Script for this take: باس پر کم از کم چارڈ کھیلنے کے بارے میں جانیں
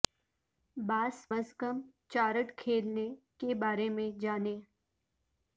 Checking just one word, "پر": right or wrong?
wrong